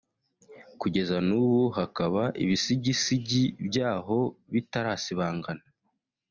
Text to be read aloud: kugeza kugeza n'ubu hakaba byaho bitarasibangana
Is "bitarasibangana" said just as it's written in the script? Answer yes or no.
yes